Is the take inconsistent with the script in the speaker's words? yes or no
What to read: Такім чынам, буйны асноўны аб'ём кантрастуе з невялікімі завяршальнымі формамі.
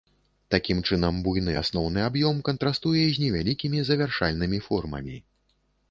no